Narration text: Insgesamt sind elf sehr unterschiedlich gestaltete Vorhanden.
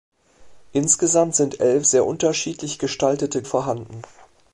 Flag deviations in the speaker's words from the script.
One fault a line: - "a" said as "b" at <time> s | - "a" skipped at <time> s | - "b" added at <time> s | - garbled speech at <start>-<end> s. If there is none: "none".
none